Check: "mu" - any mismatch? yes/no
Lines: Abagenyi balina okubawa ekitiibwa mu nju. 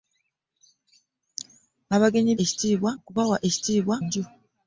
yes